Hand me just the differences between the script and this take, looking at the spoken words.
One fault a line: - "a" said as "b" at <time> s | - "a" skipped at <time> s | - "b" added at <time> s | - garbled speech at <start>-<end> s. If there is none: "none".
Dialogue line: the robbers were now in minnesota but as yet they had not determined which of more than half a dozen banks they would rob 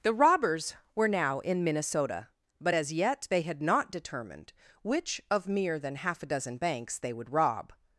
- "more" said as "mere" at 5.5 s